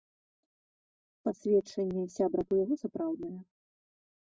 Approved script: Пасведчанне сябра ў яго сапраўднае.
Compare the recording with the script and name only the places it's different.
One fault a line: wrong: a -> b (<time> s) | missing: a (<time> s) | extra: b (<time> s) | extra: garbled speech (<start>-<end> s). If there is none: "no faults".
no faults